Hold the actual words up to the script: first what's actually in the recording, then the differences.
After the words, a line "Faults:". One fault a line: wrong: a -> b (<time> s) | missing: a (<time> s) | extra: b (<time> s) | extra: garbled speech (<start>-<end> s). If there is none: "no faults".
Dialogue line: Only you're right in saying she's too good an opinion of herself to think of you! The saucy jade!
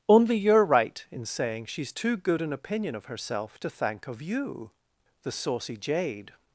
Only you're right in saying she's too good an opinion of herself to thank of you! The saucy jade!
Faults:
wrong: think -> thank (3.7 s)